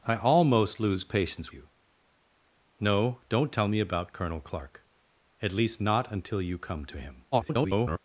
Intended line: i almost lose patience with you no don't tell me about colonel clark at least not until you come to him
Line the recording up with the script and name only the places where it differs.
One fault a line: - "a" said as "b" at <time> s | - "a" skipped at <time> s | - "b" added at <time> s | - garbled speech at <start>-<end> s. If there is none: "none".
- "with" skipped at 1.5 s
- garbled speech at 7.3-8.0 s